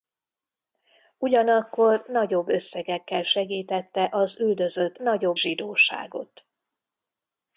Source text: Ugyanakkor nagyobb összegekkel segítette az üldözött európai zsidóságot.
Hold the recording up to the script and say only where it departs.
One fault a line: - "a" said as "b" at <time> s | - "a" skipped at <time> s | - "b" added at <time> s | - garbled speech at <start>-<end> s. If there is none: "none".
- "európai" said as "nagyobb" at 5.0 s